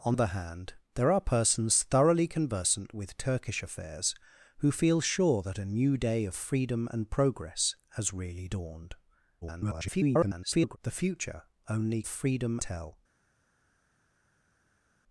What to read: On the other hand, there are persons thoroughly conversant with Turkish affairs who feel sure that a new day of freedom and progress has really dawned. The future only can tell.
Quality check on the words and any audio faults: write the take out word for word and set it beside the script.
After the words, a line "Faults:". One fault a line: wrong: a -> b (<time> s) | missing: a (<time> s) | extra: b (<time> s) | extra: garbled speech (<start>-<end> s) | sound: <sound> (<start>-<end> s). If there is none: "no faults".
On other hand, there are persons thoroughly conversant with Turkish affairs who feel sure that a new day of freedom and progress has really dawned. [garbled] The future only freedom tell.
Faults:
missing: the (0.2 s)
extra: garbled speech (9.4-10.8 s)
wrong: can -> freedom (12.1 s)